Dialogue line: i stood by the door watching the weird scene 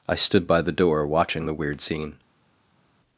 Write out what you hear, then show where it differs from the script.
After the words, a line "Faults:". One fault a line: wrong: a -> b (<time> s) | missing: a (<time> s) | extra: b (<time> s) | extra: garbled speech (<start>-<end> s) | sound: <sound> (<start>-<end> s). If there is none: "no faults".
i stood by the door watching the weird scene
Faults:
no faults